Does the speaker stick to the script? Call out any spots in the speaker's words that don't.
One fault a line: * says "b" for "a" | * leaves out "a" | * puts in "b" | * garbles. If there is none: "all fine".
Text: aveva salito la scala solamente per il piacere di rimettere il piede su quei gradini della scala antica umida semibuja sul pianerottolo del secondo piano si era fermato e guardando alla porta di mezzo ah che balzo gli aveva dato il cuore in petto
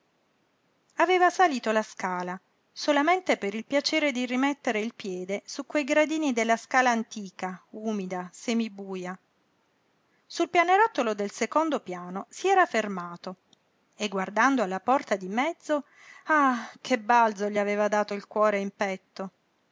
all fine